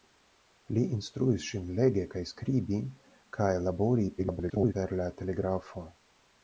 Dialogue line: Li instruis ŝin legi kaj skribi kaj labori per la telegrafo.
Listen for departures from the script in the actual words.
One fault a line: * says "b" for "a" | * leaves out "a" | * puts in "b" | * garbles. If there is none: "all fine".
* garbles